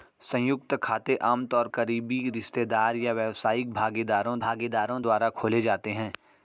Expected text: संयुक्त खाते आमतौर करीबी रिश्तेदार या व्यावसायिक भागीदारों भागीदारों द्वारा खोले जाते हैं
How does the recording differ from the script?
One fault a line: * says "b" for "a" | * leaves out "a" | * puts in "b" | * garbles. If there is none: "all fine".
all fine